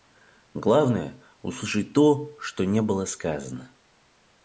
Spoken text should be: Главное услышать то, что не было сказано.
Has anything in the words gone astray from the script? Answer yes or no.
no